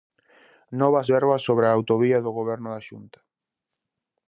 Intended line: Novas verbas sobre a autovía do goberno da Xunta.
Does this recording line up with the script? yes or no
yes